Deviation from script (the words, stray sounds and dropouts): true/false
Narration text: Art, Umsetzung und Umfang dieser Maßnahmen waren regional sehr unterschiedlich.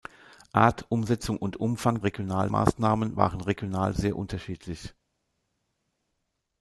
true